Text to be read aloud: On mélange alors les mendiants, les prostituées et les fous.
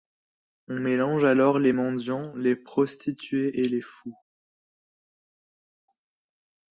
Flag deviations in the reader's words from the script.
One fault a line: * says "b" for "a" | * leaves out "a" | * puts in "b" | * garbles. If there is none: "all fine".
all fine